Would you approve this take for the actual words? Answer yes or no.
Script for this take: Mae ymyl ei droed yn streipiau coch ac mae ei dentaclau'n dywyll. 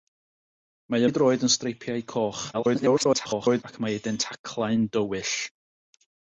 no